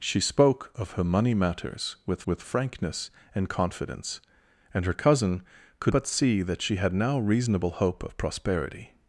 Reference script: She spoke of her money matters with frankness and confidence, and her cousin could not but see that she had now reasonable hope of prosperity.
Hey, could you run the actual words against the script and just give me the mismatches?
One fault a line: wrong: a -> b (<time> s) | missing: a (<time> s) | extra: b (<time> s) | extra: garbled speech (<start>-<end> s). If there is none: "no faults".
extra: with (2.3 s)
missing: not (5.9 s)